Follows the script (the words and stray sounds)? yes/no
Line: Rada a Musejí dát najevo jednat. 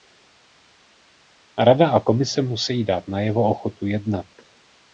no